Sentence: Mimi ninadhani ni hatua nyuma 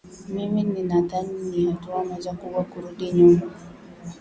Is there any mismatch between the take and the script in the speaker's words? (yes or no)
yes